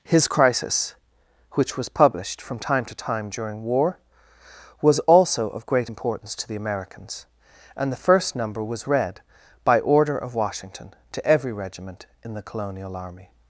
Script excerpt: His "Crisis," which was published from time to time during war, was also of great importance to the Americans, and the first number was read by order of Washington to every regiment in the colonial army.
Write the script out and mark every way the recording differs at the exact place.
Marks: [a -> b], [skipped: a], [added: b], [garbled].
His "Crisis," which was published from time to time during war, was also of great importance to the Americans, and the first number was read by order of Washington to every regiment in the colonial army.